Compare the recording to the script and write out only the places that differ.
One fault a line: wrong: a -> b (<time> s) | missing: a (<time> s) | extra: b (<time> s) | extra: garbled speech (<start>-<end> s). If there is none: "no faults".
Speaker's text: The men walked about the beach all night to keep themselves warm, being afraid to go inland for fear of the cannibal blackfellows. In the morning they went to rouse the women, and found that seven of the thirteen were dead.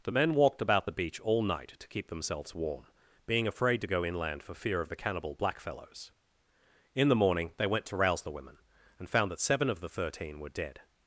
no faults